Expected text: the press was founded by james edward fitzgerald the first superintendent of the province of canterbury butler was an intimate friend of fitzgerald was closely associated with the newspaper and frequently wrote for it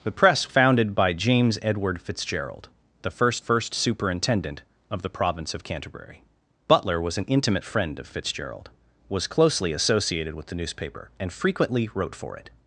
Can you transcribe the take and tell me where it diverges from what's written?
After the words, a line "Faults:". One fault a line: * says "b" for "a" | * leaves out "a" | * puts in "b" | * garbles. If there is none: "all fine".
the press founded by james edward fitzgerald the first first superintendent of the province of canterbury butler was an intimate friend of fitzgerald was closely associated with the newspaper and frequently wrote for it
Faults:
* leaves out "was"
* puts in "first"